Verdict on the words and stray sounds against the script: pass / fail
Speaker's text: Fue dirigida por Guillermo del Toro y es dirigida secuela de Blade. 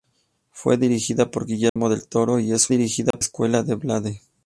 fail